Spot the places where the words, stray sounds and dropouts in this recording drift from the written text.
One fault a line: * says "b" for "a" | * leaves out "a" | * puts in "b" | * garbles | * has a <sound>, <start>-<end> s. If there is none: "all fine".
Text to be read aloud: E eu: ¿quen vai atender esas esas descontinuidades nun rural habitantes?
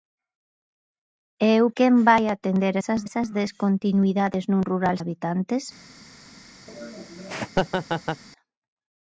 * has a laugh, 6.7-8.2 s